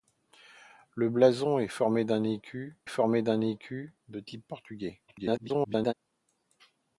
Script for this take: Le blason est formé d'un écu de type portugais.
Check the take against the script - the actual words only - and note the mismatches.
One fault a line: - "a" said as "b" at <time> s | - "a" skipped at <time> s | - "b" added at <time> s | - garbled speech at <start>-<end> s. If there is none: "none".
- "formé d'un écu" added at 2.9 s
- garbled speech at 5.1-5.9 s